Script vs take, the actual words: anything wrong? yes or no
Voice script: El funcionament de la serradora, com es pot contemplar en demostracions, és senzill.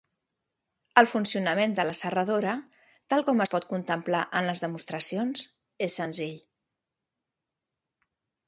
yes